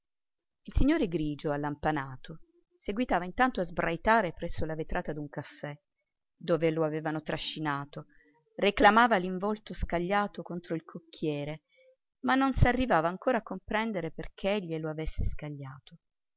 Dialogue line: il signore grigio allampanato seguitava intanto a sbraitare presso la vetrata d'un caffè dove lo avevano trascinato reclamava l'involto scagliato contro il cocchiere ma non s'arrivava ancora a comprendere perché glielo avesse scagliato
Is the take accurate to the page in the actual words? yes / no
yes